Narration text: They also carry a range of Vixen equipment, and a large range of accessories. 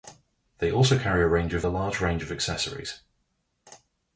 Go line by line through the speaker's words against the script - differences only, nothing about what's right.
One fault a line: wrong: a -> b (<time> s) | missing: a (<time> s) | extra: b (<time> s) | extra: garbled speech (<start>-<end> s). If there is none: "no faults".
missing: Vixen equipment and (1.6 s)